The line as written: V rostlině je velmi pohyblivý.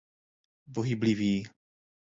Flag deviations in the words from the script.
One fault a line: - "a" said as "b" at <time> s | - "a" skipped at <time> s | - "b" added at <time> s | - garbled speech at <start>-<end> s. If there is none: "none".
- "rostlině je velmi" skipped at 0.8 s